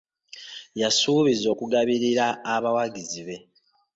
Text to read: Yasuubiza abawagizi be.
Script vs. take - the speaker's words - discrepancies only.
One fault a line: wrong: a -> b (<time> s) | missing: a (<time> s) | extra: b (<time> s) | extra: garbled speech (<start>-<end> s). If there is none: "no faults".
extra: okugabirira (1.5 s)